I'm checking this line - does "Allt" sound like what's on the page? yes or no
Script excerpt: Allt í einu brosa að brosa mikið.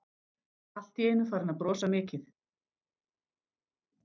yes